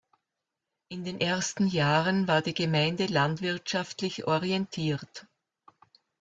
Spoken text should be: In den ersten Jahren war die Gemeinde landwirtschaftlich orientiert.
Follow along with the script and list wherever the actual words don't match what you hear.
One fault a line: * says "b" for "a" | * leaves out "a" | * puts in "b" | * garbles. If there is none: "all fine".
all fine